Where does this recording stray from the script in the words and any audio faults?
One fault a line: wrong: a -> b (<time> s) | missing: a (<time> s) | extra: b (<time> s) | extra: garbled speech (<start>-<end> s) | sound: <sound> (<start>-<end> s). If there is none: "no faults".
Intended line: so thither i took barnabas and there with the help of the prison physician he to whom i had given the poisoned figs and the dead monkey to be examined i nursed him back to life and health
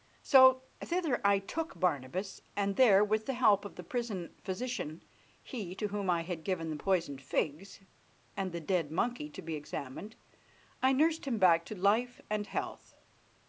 no faults